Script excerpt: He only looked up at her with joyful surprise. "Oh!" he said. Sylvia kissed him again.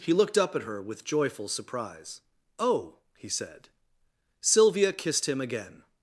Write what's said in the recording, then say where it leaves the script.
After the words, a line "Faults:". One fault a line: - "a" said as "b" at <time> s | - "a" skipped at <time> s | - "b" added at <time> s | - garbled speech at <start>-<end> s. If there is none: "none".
He looked up at her with joyful surprise. "Oh!" he said. Sylvia kissed him again.
Faults:
- "only" skipped at 0.1 s